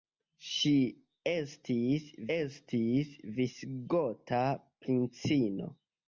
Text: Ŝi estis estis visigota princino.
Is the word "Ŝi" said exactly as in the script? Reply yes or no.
yes